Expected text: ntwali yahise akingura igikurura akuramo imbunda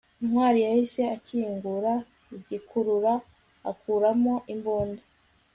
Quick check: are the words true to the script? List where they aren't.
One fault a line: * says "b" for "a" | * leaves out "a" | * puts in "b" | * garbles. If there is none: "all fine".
all fine